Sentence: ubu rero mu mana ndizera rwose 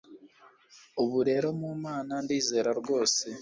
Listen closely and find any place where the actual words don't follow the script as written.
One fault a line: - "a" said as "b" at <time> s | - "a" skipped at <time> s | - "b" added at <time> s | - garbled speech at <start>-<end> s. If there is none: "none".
none